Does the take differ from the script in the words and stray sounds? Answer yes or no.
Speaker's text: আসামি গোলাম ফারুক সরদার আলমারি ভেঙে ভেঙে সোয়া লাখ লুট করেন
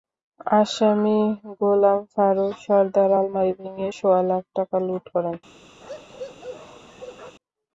yes